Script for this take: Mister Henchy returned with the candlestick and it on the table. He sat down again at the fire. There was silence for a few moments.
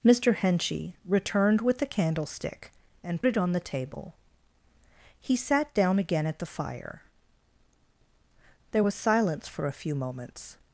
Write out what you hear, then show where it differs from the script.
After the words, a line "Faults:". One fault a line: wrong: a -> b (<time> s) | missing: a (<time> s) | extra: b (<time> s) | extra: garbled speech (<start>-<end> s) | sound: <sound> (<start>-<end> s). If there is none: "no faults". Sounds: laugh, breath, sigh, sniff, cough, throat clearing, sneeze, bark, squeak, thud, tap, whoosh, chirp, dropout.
Mister Henchy returned with the candlestick and it on the table. He sat down again at the fire. There was silence for a few moments.
Faults:
no faults